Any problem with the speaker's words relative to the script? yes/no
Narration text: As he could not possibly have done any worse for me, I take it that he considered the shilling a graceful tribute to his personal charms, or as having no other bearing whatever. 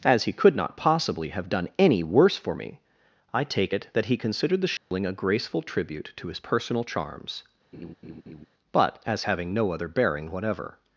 yes